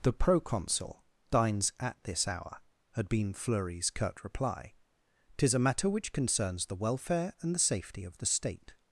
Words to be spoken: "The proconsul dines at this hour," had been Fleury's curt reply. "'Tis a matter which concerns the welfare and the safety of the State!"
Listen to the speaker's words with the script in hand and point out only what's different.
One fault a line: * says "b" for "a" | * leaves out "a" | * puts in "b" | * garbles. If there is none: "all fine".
all fine